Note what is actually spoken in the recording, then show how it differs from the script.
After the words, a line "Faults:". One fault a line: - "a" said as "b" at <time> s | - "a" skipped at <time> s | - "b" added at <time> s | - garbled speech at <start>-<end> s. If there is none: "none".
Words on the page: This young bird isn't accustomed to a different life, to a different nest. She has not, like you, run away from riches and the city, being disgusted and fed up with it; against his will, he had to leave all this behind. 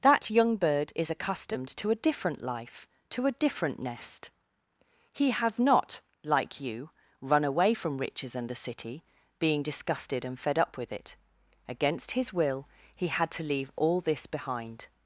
That young bird is accustomed to a different life, to a different nest. He has not, like you, run away from riches and the city, being disgusted and fed up with it; against his will, he had to leave all this behind.
Faults:
- "This" said as "That" at 0.0 s
- "isn't" said as "is" at 0.9 s
- "She" said as "He" at 5.1 s